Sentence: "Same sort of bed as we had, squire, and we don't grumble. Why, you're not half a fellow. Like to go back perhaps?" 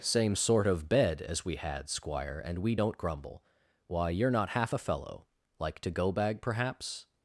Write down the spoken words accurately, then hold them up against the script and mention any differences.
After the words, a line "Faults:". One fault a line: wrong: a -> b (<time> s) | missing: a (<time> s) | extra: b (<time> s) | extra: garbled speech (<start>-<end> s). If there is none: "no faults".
"Same sort of bed as we had, squire, and we don't grumble. Why, you're not half a fellow. Like to go bag perhaps?"
Faults:
wrong: back -> bag (6.1 s)